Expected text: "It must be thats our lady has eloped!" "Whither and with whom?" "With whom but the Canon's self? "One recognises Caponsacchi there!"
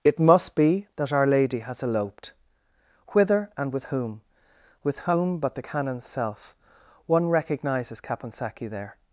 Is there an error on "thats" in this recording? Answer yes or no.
yes